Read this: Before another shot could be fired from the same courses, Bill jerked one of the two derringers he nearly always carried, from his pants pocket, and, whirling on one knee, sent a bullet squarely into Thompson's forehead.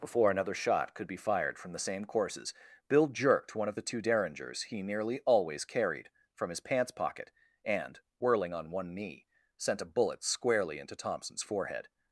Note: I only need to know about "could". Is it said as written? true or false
true